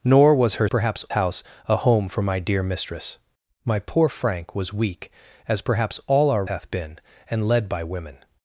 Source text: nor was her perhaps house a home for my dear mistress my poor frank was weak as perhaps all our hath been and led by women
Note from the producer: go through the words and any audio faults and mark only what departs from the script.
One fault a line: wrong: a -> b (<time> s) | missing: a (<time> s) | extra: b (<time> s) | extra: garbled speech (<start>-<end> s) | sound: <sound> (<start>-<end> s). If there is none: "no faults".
no faults